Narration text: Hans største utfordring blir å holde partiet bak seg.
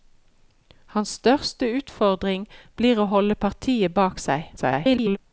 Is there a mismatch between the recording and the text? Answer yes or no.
yes